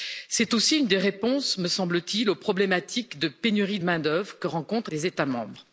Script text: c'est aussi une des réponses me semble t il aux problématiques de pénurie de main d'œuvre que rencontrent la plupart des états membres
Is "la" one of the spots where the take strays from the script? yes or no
yes